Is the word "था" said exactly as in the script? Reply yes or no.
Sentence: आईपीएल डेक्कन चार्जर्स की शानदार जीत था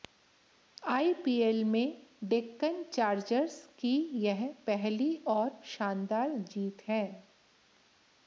no